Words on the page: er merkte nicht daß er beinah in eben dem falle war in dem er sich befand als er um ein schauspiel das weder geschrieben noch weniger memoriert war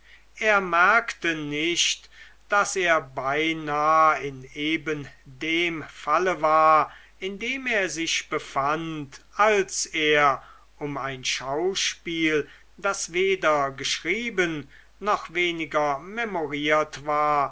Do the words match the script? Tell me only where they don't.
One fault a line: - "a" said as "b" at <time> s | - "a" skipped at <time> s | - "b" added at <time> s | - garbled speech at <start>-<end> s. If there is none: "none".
none